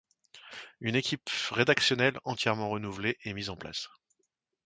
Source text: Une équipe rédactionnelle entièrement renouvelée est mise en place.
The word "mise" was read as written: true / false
true